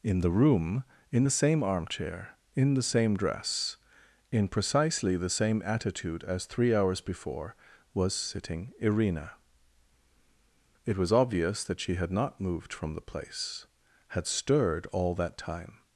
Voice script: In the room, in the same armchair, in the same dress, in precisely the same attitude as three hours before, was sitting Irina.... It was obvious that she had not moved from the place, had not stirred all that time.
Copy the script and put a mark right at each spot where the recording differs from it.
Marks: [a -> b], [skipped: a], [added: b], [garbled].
In the room, in the same armchair, in the same dress, in precisely the same attitude as three hours before, was sitting Irina.... It was obvious that she had not moved from the place, had [skipped: not] stirred all that time.